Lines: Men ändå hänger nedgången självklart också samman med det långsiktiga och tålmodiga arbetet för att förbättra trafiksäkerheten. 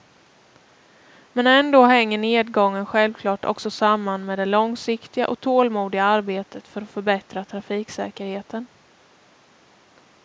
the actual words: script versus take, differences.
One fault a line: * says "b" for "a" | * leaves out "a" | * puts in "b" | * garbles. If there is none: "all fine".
all fine